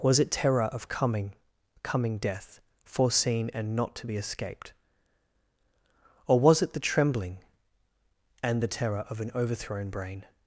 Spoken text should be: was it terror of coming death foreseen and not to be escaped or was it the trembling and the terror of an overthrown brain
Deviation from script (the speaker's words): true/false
true